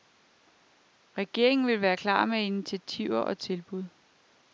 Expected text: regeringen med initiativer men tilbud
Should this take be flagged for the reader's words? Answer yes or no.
yes